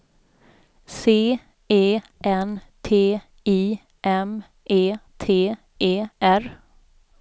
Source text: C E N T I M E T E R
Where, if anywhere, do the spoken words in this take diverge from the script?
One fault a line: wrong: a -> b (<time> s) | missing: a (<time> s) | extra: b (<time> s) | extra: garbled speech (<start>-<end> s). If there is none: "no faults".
no faults